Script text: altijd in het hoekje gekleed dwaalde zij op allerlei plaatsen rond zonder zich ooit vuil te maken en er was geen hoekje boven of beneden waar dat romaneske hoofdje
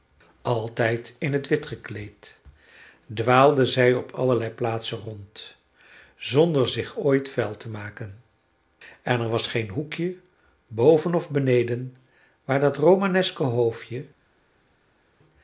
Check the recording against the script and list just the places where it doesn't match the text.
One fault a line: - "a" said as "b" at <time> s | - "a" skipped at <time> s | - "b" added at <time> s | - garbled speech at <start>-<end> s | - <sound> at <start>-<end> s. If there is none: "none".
- "hoekje" said as "wit" at 1.5 s